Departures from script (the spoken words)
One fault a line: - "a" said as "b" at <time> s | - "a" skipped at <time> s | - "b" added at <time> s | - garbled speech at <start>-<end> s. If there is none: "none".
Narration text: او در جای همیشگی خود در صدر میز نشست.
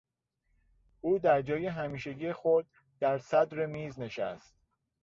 none